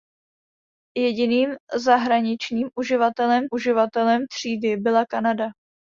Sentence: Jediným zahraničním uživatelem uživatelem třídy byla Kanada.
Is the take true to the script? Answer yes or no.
yes